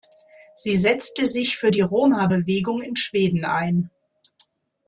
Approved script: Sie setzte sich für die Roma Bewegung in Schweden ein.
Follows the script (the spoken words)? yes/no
yes